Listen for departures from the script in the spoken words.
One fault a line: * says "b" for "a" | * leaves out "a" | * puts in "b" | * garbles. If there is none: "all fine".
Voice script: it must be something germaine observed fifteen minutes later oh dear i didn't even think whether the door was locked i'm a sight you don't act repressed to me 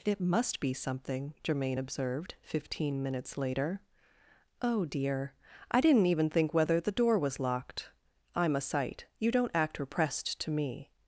all fine